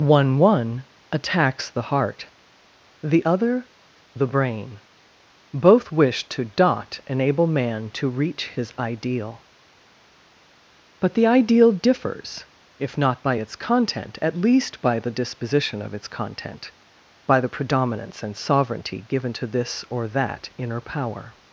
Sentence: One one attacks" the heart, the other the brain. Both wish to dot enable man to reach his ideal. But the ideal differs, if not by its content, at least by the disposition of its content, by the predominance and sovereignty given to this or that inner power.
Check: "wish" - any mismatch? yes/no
no